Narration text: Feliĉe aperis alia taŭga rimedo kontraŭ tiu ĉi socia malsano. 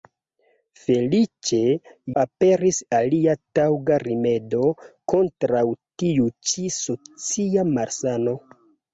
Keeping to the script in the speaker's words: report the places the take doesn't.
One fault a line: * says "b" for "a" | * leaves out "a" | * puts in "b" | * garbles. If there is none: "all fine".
all fine